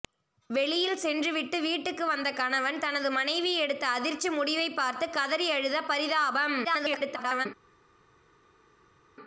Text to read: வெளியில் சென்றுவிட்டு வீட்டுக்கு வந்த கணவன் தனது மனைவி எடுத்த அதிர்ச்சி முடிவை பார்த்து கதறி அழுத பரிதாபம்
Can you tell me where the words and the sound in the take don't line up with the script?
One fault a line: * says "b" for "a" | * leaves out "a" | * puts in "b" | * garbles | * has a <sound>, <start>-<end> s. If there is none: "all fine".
* garbles